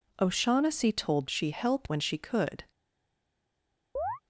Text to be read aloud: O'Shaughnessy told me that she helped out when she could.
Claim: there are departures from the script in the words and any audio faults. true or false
true